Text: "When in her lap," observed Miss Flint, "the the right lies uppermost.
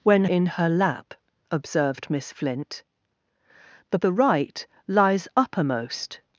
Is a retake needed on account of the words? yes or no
no